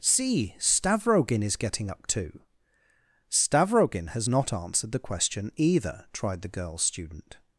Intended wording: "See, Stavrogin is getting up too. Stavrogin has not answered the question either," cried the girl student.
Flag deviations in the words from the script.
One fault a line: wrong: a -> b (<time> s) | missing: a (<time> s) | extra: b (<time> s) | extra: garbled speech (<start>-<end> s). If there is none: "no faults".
wrong: cried -> tried (6.1 s)